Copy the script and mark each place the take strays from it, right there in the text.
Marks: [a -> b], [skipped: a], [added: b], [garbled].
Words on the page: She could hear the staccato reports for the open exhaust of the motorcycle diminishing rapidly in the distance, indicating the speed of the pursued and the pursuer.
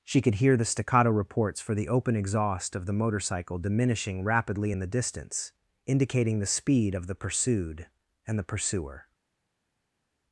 She could hear the staccato reports for the open exhaust of the motorcycle diminishing rapidly in the distance, indicating the speed of the pursued and the pursuer.